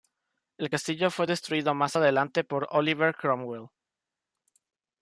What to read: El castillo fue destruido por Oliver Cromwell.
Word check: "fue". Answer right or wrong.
right